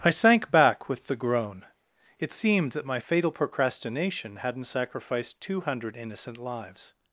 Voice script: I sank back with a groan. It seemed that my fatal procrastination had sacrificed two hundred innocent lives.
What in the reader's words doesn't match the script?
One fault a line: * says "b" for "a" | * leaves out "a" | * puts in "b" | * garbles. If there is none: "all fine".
* says "the" for "a"
* says "hadn't" for "had"